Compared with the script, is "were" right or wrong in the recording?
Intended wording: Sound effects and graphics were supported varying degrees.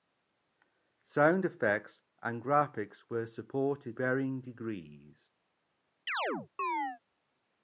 right